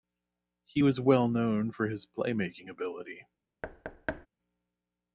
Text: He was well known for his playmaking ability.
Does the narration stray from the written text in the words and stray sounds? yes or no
yes